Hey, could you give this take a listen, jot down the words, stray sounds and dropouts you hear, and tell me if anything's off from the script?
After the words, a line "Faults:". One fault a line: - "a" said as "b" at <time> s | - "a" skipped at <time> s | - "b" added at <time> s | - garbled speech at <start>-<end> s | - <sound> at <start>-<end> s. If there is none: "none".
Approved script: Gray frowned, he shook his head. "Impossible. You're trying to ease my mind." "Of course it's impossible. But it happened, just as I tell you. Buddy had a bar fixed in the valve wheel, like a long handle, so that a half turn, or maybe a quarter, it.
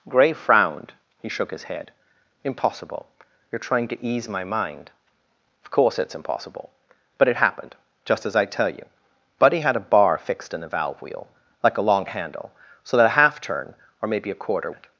Gray frowned, he shook his head. "Impossible. You're trying to ease my mind." "Of course it's impossible. But it happened, just as I tell you. Buddy had a bar fixed in the valve wheel, like a long handle, so that a half turn, or maybe a quarter, it.
Faults:
none